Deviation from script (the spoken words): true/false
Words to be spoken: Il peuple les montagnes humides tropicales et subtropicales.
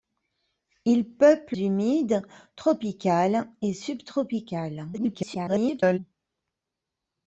true